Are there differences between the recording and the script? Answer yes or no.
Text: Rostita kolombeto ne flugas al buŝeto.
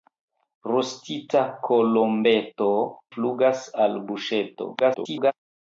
yes